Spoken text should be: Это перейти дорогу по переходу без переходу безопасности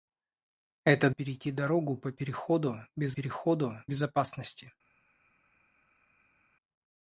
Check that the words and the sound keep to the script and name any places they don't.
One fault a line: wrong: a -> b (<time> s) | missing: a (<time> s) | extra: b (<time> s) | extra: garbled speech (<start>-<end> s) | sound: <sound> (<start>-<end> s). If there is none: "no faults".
no faults